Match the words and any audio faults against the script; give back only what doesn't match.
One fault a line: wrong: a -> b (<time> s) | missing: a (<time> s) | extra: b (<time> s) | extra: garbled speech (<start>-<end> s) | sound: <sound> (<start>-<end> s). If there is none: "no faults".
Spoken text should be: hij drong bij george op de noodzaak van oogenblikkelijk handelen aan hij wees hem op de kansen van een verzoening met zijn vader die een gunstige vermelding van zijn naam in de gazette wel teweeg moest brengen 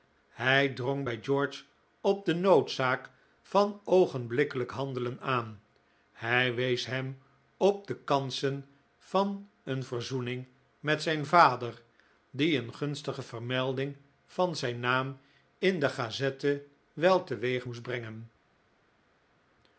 no faults